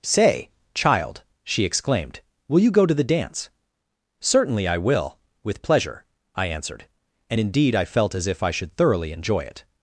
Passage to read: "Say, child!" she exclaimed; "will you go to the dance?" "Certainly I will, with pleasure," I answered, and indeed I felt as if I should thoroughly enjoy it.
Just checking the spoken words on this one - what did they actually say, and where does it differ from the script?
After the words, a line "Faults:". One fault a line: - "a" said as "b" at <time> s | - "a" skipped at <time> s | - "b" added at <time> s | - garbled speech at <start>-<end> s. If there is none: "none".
"Say, child!" she exclaimed; "will you go to the dance?" "Certainly I will, with pleasure," I answered, and indeed I felt as if I should thoroughly enjoy it.
Faults:
none